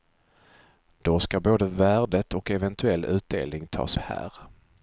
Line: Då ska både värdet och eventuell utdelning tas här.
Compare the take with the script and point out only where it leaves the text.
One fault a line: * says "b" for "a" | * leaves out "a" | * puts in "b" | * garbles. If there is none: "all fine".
all fine